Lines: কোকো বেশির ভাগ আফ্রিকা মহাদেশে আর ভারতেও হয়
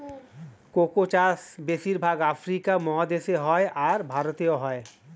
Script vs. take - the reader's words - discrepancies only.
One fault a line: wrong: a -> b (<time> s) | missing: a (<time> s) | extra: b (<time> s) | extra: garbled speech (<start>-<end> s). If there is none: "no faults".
extra: চাষ (1.1 s)
extra: হয় (3.5 s)